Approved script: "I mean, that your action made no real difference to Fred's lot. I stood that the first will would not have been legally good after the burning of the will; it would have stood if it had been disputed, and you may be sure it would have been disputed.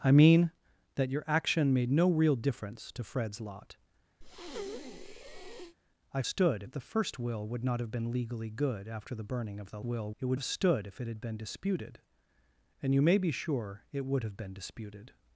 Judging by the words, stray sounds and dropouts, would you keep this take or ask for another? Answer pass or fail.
fail